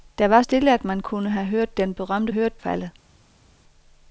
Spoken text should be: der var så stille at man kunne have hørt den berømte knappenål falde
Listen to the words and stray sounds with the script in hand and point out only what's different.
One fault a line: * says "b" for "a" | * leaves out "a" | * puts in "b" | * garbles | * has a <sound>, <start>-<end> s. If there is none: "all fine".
* leaves out "så"
* says "hørt" for "knappenål"